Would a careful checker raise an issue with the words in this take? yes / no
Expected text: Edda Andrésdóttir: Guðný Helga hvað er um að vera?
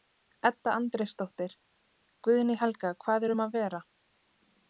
no